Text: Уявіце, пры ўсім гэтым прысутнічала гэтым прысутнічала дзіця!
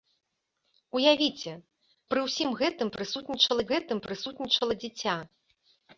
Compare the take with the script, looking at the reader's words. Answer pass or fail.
pass